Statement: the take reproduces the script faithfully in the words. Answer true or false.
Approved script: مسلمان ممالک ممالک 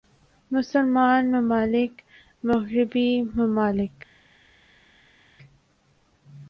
false